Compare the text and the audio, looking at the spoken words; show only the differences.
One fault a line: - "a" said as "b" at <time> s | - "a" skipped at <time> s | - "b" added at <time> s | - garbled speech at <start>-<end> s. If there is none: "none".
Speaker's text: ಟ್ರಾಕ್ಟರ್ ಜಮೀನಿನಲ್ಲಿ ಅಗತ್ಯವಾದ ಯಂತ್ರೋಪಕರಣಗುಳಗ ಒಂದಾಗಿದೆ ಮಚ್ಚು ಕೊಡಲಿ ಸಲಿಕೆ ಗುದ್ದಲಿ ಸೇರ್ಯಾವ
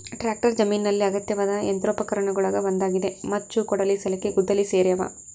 none